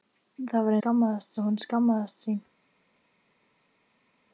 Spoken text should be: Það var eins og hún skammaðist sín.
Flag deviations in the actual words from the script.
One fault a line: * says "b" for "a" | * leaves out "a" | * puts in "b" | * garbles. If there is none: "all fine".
* says "skammaðist" for "eins"